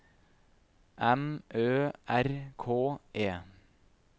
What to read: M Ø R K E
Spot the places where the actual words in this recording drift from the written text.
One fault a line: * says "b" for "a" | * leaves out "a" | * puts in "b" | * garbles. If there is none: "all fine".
all fine